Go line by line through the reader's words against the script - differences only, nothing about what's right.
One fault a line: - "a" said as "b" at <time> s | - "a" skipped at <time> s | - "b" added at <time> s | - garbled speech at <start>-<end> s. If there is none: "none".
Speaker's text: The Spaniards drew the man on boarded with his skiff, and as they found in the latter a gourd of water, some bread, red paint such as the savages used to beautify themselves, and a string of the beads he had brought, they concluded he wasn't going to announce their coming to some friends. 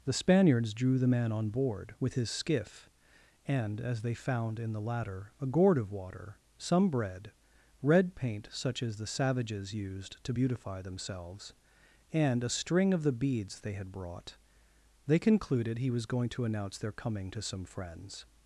- "boarded" said as "board" at 1.5 s
- "he" said as "they" at 13.6 s
- "wasn't" said as "was" at 15.9 s